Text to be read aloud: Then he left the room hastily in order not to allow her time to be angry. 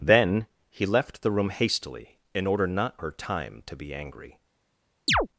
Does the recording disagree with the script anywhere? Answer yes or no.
yes